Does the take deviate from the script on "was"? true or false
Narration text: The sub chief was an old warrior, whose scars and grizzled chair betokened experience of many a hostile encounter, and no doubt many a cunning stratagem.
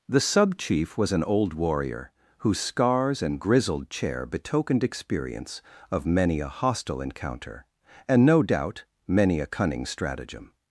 false